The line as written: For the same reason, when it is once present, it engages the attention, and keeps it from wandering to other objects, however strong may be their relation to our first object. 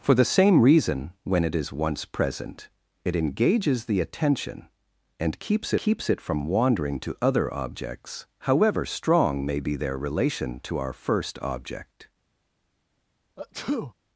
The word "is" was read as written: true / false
true